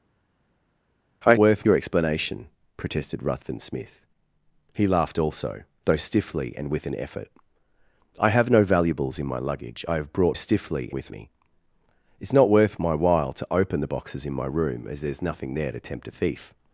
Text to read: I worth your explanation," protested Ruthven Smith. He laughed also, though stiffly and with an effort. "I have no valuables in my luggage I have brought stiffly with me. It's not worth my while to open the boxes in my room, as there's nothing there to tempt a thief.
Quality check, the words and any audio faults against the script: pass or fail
pass